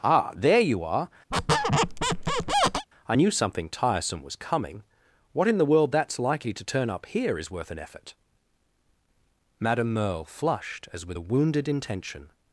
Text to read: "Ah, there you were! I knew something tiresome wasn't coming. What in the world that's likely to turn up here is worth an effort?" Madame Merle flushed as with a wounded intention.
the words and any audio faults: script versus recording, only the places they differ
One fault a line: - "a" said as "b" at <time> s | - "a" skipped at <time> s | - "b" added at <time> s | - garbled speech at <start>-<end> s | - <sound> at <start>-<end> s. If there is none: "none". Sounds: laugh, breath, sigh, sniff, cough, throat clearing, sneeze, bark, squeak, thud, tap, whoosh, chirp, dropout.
- "were" said as "are" at 0.8 s
- squeak at 1.3-2.9 s
- "wasn't" said as "was" at 4.2 s